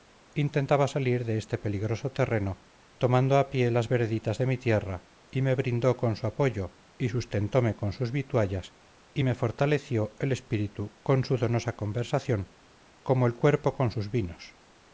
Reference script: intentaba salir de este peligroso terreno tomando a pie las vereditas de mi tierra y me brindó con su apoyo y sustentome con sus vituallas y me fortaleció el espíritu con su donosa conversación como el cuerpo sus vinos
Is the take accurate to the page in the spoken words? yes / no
no